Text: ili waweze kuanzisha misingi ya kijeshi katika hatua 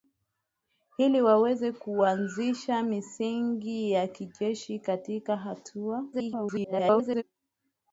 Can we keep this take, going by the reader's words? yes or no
no